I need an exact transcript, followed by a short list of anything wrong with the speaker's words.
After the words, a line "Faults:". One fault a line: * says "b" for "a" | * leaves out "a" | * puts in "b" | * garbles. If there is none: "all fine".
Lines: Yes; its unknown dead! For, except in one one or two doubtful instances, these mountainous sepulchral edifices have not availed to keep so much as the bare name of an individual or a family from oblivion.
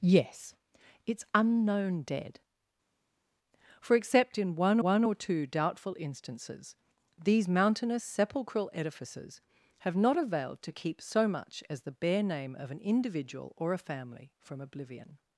Yes; its unknown dead! For, except in one one or two doubtful instances, these mountainous sepulchral edifices have not availed to keep so much as the bare name of an individual or a family from oblivion.
Faults:
all fine